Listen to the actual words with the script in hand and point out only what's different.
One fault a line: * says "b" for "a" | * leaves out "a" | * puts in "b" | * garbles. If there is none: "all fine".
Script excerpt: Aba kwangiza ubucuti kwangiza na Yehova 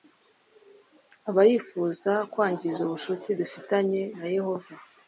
* puts in "yifuza"
* says "dufitanye" for "kwangiza"